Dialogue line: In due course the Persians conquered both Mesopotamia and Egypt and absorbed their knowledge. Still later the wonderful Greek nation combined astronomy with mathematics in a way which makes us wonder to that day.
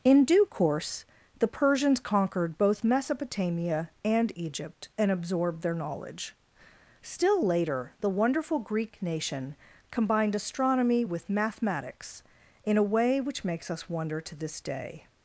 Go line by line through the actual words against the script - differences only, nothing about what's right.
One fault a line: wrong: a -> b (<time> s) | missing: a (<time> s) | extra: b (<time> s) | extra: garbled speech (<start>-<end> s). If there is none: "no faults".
wrong: that -> this (14.4 s)